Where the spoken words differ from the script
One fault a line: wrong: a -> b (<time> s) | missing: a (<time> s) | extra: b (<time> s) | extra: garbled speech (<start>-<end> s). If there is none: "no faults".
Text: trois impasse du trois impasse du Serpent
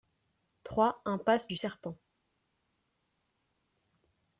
missing: trois impasse du (1.6 s)